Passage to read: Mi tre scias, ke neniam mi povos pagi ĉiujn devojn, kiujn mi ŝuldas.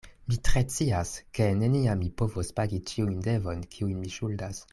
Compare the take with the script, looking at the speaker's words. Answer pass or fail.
pass